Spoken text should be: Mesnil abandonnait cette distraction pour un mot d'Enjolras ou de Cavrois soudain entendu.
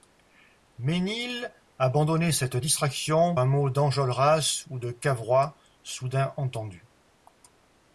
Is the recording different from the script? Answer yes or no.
yes